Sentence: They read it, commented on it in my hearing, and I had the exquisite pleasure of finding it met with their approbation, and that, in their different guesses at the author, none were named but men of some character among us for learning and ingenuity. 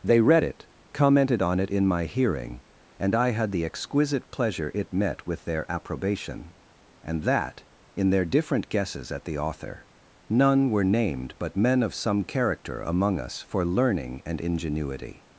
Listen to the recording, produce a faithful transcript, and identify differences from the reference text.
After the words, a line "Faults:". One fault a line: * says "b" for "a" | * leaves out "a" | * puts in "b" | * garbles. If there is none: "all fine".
They read it, commented on it in my hearing, and I had the exquisite pleasure it met with their approbation, and that, in their different guesses at the author, none were named but men of some character among us for learning and ingenuity.
Faults:
* leaves out "of finding"